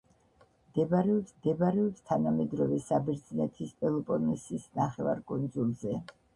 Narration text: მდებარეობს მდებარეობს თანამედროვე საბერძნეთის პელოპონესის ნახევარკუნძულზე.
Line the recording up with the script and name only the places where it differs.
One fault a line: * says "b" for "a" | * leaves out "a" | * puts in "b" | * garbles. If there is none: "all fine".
all fine